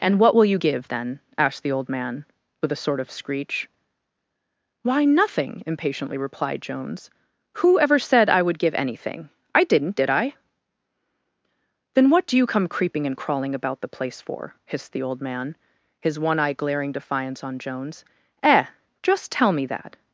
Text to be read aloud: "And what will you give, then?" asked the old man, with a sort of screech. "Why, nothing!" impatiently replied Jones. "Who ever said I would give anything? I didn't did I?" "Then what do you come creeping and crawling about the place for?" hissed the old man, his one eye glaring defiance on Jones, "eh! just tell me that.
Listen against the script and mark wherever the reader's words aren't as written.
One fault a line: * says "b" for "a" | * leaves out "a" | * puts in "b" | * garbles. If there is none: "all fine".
all fine